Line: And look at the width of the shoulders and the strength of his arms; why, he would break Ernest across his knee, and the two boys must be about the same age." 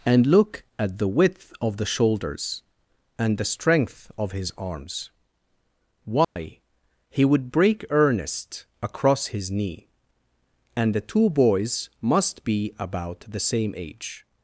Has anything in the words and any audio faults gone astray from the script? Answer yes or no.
yes